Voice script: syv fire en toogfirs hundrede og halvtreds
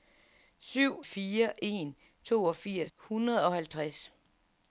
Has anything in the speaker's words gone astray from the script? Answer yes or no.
no